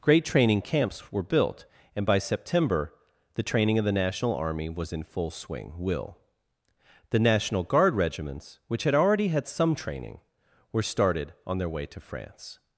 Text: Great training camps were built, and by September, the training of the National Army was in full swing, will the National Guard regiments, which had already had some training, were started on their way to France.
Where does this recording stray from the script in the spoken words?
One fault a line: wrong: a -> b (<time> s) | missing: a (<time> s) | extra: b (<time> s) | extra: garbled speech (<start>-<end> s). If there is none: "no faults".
no faults